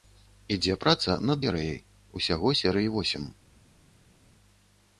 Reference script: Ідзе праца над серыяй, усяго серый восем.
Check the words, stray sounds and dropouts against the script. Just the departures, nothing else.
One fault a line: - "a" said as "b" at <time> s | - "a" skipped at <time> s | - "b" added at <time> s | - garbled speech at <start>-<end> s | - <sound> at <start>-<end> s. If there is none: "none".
none